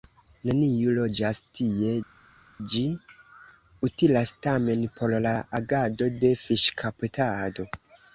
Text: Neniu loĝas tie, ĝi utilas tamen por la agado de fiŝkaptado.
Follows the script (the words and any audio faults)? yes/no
yes